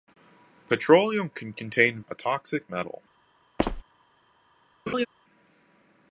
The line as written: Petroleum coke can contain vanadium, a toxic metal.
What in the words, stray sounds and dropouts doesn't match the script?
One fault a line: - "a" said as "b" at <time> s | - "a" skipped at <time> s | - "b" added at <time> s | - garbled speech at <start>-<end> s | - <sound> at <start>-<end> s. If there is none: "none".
- "coke" skipped at 1.3 s
- "vanadium" skipped at 2.0 s
- squeak at 3.6-3.8 s
- laugh at 4.9-5.1 s